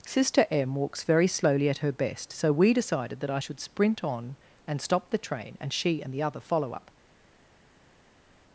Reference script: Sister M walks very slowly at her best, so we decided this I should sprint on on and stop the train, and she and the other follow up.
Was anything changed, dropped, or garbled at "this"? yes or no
yes